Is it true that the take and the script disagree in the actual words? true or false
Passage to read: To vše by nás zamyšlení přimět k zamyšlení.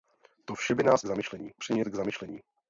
false